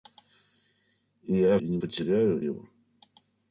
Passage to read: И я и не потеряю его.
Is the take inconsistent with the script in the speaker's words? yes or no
no